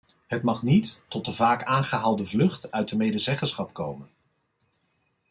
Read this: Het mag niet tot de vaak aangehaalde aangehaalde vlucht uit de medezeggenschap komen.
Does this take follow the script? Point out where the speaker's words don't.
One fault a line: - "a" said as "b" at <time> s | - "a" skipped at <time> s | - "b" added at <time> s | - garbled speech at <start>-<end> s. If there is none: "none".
- "aangehaalde" skipped at 2.2 s